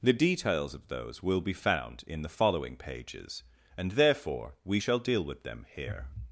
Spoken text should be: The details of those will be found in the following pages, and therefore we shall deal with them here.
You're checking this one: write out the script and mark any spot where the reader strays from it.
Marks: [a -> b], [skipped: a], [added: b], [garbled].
The details of those will be found in the following pages, and therefore we shall deal with them here.